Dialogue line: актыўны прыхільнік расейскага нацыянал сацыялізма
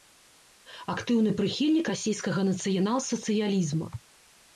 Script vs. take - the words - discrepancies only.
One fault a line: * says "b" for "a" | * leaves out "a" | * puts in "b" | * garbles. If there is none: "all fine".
all fine